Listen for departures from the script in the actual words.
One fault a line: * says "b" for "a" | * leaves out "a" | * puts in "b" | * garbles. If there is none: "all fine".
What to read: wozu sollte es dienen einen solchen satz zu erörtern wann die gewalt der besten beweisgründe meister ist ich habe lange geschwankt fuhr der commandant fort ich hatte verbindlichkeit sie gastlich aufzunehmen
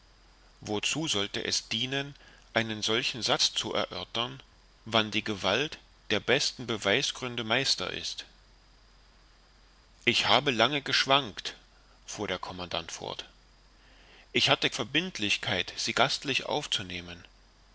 all fine